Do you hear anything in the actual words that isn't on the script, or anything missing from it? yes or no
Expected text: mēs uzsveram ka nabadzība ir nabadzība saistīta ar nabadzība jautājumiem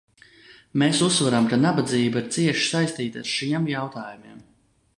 yes